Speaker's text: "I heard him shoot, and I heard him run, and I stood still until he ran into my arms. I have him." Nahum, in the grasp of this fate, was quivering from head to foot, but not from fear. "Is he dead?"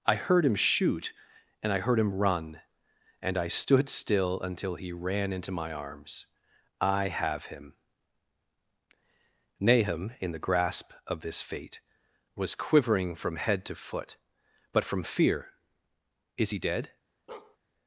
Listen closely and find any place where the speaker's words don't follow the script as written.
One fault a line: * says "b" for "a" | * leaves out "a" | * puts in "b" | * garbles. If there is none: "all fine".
* leaves out "not"